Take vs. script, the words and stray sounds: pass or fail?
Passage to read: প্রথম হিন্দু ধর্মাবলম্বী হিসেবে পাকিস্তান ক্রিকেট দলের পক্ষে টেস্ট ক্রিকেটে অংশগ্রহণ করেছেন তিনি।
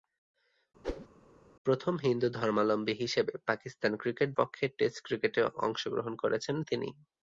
fail